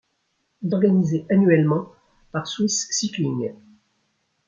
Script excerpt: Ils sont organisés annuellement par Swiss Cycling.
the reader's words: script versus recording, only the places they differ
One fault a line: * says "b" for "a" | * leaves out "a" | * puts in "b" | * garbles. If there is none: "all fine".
* leaves out "sont"